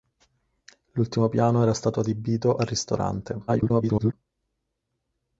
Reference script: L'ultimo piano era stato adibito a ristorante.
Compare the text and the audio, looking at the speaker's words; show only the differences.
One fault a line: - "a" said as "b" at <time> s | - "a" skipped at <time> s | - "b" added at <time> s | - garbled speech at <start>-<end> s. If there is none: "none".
- garbled speech at 3.5-4.1 s